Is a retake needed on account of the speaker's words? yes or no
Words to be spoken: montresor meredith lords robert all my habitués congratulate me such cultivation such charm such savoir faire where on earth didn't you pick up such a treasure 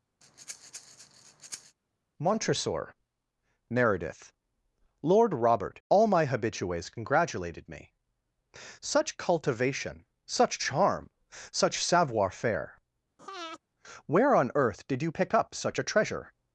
yes